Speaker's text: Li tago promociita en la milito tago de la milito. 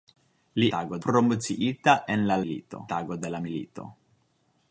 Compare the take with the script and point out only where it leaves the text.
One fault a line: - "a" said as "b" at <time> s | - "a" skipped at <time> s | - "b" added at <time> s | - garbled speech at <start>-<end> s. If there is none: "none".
none